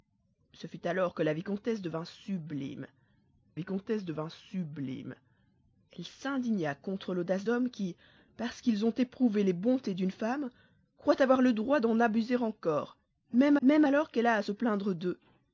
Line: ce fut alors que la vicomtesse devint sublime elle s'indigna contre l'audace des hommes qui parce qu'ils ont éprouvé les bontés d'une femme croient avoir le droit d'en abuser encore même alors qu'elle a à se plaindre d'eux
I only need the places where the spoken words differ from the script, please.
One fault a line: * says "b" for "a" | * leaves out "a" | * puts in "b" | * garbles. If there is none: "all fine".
* puts in "vicomtesse devint sublime"
* leaves out "des"
* puts in "même"